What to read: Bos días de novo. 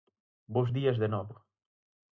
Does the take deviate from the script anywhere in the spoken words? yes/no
no